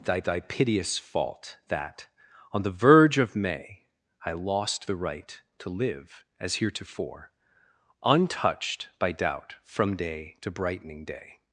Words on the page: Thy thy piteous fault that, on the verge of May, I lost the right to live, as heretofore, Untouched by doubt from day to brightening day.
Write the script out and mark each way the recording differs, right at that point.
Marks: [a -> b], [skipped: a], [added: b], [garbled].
Thy thy piteous fault that, on the verge of May, I lost the right to live, as heretofore, Untouched by doubt from day to brightening day.